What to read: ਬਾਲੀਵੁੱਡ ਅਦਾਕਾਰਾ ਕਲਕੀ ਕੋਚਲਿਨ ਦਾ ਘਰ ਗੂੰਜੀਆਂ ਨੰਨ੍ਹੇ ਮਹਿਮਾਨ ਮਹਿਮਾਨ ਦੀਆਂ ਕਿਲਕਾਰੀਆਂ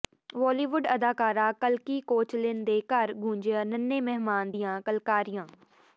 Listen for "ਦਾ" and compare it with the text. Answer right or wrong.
wrong